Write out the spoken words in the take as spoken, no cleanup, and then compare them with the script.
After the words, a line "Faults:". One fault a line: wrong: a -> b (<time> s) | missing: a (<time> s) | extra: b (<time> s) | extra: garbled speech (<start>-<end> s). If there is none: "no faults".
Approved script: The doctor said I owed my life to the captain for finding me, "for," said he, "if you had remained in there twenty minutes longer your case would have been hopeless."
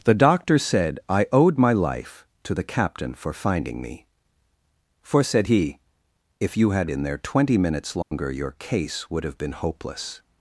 The doctor said I owed my life to the captain for finding me, "for," said he, "if you had in there twenty minutes longer your case would have been hopeless."
Faults:
missing: remained (6.9 s)